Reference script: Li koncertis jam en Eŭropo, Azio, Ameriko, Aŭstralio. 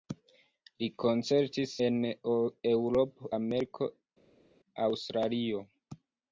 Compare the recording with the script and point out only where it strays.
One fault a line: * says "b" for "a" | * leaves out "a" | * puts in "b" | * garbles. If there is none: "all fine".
* leaves out "jam"
* leaves out "Azio"